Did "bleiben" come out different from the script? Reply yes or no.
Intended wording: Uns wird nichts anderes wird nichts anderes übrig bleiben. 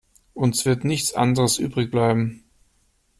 no